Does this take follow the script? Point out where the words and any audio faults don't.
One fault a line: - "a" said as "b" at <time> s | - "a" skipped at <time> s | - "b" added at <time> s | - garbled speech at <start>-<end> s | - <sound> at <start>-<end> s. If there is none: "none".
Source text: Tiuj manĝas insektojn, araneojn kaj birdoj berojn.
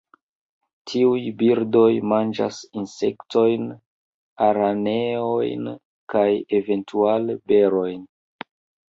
- "birdoj" added at 1.4 s
- "birdoj" said as "eventuale" at 6.6 s